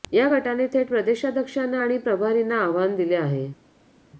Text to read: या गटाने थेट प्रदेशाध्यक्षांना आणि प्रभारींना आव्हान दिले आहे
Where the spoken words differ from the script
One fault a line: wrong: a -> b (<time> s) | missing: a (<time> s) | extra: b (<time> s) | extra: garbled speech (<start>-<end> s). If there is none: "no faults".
no faults